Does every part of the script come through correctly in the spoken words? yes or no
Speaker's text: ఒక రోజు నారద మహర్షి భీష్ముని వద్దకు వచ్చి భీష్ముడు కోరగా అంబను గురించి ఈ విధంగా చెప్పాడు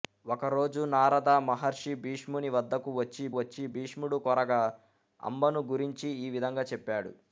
no